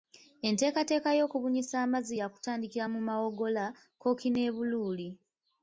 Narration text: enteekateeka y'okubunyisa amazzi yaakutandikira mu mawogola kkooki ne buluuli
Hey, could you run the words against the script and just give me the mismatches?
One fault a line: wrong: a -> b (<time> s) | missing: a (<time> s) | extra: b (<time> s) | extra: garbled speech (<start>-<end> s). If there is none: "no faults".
no faults